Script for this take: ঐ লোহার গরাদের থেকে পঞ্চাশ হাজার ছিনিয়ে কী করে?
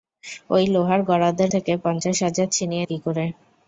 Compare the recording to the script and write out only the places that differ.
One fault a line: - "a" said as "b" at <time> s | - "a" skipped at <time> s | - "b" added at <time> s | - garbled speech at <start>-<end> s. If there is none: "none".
none